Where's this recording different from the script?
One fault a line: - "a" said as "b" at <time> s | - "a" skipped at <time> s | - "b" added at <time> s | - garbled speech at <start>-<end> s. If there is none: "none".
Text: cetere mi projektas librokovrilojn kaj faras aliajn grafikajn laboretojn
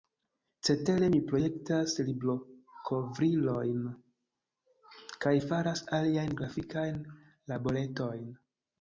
none